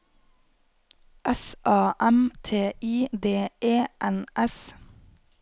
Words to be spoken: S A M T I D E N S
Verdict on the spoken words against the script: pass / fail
pass